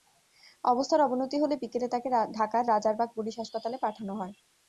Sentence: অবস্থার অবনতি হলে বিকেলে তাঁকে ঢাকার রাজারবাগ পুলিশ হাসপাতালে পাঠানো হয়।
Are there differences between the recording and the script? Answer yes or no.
no